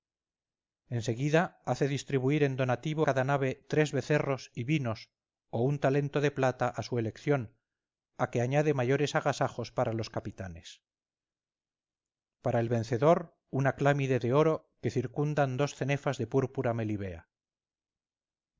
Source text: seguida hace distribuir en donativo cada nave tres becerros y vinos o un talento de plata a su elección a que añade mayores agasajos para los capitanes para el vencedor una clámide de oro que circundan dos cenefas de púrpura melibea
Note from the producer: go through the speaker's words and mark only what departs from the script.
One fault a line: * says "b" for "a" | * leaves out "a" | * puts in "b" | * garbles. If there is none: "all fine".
all fine